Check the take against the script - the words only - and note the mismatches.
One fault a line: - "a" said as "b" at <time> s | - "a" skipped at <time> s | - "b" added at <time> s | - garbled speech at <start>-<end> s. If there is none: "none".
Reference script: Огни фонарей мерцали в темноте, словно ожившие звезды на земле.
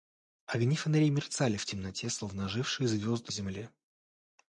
- "на" skipped at 3.3 s